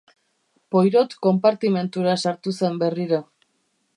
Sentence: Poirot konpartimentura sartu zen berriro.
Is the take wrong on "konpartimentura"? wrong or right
right